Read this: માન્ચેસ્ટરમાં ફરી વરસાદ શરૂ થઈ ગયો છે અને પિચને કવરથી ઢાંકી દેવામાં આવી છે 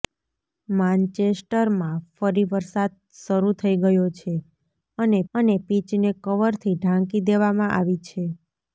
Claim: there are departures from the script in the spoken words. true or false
true